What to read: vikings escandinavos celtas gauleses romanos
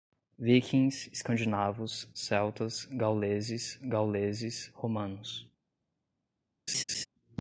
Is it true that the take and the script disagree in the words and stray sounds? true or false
true